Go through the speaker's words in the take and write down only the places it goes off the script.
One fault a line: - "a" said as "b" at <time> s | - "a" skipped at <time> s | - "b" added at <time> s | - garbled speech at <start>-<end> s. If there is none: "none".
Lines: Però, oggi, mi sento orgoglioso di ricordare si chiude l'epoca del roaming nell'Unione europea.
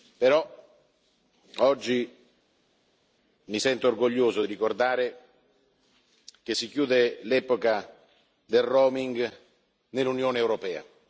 - "che" added at 6.4 s